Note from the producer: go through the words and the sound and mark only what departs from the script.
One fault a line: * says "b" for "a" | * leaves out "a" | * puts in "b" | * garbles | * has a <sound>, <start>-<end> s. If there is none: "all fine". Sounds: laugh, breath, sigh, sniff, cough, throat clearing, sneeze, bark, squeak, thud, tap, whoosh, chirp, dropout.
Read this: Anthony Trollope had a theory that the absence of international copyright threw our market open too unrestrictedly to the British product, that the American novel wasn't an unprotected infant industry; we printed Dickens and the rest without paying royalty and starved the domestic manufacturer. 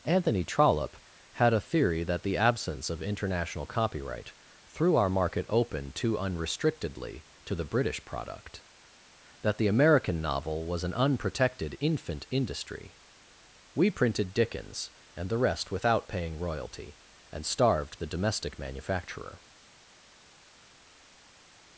* says "was" for "wasn't"